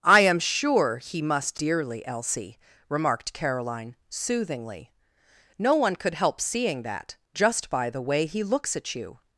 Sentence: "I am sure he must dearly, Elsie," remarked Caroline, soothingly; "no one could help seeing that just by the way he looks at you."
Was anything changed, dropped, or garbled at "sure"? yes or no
no